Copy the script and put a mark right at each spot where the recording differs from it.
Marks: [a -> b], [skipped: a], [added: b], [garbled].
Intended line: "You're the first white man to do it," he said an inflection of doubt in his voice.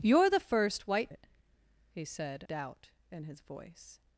"You're the first white [skipped: man to do] it," he said [skipped: an inflection of] doubt in his voice.